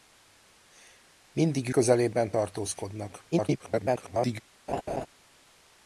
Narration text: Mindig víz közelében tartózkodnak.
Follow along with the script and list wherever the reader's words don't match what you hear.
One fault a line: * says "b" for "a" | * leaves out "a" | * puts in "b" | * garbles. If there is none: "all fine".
* leaves out "víz"
* garbles